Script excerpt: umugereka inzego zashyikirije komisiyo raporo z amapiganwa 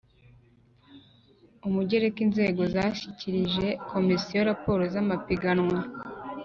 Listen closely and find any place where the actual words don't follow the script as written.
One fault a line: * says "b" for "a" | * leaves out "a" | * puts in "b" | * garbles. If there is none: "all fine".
all fine